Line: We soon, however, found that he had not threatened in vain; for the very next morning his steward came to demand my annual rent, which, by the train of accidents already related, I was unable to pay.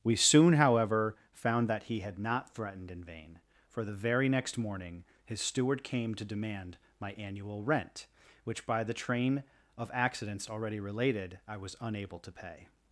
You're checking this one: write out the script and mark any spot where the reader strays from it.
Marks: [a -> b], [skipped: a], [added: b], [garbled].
We soon, however, found that he had not threatened in vain; for the very next morning his steward came to demand my annual rent, which, by the train of accidents already related, I was unable to pay.